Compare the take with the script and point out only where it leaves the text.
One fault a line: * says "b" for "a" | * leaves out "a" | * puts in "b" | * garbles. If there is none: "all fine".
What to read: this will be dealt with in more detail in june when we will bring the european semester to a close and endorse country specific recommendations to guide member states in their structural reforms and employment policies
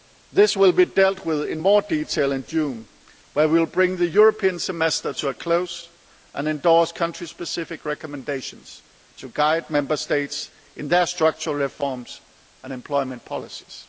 all fine